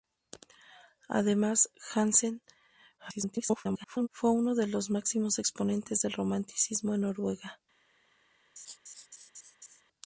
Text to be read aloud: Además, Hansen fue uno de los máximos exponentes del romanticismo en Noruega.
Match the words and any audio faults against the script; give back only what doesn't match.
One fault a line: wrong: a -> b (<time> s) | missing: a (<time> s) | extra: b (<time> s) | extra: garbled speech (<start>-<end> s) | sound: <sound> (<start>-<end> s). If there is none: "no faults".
extra: garbled speech (3.0-4.1 s)
sound: laugh (8.6-9.8 s)